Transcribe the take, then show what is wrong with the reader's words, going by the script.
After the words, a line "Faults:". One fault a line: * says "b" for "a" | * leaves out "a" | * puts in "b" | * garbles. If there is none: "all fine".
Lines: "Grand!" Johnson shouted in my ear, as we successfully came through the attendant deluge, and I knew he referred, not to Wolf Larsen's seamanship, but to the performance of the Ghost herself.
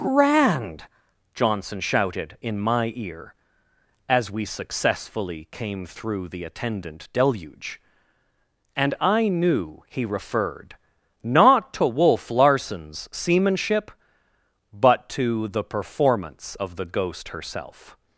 "Grand!" Johnson shouted in my ear, as we successfully came through the attendant deluge, and I knew he referred, not to Wolf Larsen's seamanship, but to the performance of the Ghost herself.
Faults:
all fine